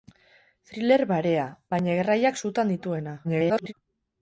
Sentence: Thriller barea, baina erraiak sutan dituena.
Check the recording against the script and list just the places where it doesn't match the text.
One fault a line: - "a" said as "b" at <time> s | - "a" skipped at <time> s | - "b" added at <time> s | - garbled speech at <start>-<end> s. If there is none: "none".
- garbled speech at 3.2-3.7 s